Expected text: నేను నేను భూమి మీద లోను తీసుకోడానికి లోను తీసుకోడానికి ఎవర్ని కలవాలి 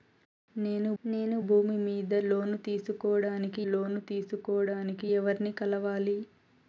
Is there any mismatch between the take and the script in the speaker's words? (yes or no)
no